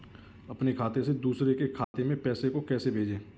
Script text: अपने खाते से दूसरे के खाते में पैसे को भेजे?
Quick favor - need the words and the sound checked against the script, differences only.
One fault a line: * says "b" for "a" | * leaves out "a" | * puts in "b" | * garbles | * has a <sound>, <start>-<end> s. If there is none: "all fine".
* has a dropout, 1.8-1.9 s
* puts in "कैसे"